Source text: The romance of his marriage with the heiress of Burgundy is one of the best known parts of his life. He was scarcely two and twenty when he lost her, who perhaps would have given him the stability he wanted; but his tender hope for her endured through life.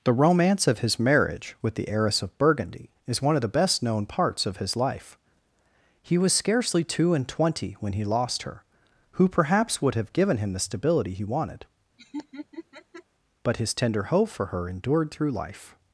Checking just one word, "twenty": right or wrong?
right